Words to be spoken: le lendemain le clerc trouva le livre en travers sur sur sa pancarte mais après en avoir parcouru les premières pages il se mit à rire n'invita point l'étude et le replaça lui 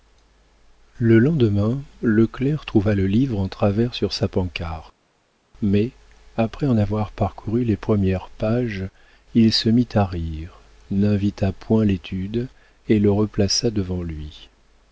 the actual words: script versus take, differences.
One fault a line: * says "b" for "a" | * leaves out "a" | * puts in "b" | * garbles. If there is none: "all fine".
* leaves out "sur"
* puts in "devant"